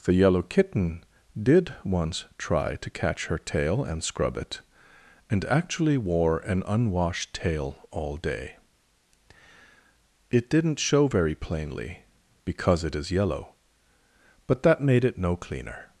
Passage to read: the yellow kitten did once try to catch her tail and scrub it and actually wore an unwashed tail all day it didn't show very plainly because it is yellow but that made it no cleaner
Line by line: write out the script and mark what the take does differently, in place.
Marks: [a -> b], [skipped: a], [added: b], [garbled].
the yellow kitten did once try to catch her tail and scrub it and actually wore an unwashed tail all day it didn't show very plainly because it is yellow but that made it no cleaner